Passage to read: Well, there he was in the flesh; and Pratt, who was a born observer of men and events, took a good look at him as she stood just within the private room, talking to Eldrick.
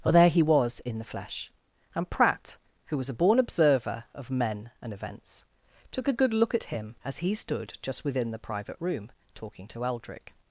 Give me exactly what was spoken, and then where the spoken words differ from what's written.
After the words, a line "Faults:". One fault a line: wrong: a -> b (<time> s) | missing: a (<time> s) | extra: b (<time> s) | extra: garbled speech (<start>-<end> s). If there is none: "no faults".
Well, there he was in the flesh; and Pratt, who was a born observer of men and events, took a good look at him as he stood just within the private room, talking to Eldrick.
Faults:
wrong: she -> he (7.2 s)